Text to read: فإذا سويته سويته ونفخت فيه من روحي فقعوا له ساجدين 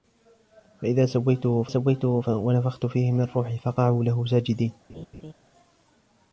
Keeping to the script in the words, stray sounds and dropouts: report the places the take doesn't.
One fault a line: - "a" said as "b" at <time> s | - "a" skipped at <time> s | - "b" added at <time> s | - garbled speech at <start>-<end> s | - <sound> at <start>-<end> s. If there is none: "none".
- laugh at 4.9-5.3 s